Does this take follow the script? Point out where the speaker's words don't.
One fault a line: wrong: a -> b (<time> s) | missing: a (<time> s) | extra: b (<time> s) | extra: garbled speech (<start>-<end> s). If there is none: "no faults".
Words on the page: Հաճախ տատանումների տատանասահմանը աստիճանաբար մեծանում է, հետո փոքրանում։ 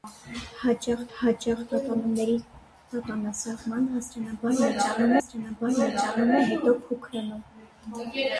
extra: հաճախ (1.2 s)
extra: աստիճանաբար մեծանում (5.2 s)